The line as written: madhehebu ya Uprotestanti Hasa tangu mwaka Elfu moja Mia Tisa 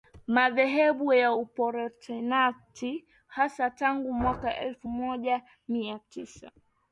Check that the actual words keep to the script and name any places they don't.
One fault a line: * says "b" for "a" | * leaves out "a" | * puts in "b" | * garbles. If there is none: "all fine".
all fine